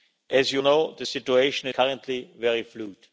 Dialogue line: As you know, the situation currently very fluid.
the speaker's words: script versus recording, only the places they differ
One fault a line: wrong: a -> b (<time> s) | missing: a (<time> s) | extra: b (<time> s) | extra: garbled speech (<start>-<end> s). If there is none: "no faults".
no faults